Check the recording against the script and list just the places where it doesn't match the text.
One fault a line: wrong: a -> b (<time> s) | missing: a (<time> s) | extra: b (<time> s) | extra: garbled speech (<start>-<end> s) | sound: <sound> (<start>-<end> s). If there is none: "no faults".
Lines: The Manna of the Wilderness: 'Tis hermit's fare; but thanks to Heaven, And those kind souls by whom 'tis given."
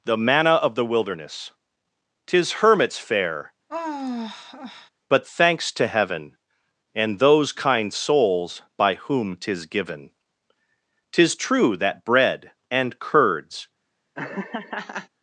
sound: sigh (3.7-4.9 s)
extra: Tis true that bread and curds (11.1 s)
sound: laugh (14.1-15.1 s)